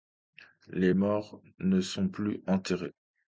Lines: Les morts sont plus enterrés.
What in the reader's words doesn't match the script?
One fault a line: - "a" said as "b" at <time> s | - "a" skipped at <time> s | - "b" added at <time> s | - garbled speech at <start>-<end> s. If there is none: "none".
- "ne" added at 1.6 s